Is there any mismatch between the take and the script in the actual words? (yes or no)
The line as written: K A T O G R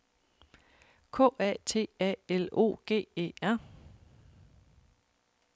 yes